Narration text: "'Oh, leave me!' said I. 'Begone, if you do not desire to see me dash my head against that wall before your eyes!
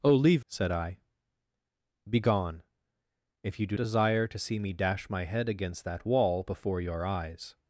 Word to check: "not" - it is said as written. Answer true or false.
false